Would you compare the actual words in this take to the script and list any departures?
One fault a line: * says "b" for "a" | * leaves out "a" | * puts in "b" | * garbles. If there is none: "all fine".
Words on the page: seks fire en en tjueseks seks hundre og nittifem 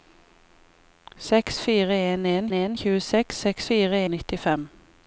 * puts in "en"
* says "fire" for "hundre"